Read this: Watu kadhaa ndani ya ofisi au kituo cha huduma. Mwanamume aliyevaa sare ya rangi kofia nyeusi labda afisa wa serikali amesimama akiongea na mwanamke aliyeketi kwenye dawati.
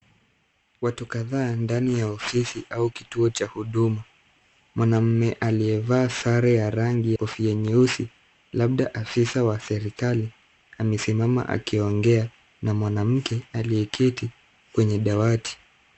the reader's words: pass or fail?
pass